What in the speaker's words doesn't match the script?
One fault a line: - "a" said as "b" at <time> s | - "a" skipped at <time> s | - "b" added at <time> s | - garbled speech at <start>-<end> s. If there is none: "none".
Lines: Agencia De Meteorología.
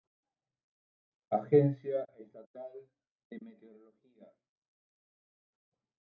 - "Estatal" added at 2.2 s